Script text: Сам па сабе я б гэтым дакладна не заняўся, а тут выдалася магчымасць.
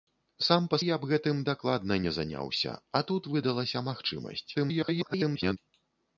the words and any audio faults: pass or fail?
fail